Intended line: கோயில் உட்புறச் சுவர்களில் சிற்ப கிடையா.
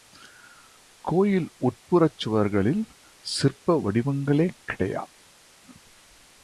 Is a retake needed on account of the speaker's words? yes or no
yes